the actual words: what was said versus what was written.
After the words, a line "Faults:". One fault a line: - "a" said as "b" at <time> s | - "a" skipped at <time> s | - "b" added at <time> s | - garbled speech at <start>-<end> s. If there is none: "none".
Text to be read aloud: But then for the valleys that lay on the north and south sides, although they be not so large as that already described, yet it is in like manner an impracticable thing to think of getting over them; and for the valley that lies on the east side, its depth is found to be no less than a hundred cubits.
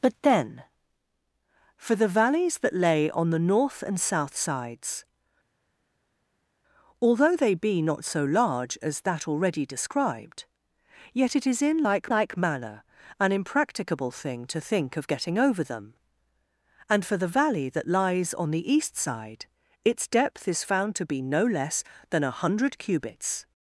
But then for the valleys that lay on the north and south sides, although they be not so large as that already described, yet it is in like like manner an impracticable thing to think of getting over them; and for the valley that lies on the east side, its depth is found to be no less than a hundred cubits.
Faults:
- "like" added at 12.1 s